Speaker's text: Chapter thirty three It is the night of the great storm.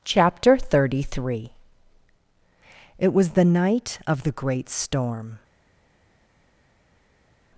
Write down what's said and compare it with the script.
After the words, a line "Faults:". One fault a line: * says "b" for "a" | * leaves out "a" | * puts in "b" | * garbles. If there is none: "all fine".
Chapter thirty three It was the night of the great storm.
Faults:
* says "was" for "is"